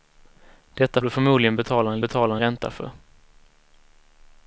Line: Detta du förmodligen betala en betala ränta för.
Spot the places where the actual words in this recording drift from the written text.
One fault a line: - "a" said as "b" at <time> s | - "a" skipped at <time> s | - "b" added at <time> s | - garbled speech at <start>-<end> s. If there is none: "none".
none